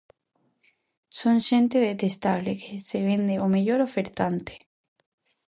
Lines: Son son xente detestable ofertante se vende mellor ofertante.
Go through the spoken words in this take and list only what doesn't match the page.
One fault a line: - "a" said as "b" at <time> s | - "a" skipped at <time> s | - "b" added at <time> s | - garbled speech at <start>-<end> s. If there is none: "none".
- "son" skipped at 1.4 s
- "ofertante" said as "que" at 2.6 s
- "ao" added at 3.4 s